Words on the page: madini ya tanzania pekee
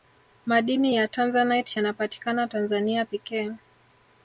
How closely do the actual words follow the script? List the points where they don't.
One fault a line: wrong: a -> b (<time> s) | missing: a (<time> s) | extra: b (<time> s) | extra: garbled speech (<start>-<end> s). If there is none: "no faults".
extra: tanzanite yanapatikana (1.1 s)